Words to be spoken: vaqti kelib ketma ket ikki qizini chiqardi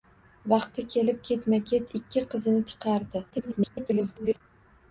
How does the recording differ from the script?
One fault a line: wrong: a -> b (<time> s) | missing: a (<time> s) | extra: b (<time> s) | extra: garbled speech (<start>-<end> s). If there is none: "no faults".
extra: garbled speech (3.3-4.4 s)